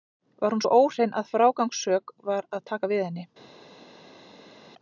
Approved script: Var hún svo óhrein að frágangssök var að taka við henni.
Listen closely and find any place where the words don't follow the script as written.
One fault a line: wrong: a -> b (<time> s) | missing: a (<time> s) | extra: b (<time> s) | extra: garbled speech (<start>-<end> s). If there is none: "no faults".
no faults